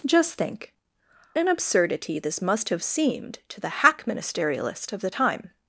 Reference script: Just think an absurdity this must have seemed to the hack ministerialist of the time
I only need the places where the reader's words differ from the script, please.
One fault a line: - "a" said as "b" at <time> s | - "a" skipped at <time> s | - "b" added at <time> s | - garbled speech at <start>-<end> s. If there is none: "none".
none